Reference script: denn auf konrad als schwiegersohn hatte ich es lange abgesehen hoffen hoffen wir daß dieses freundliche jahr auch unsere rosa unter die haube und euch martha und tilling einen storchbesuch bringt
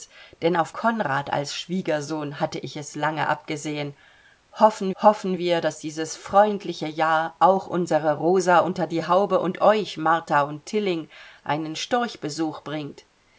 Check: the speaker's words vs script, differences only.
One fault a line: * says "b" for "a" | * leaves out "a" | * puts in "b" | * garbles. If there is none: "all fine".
all fine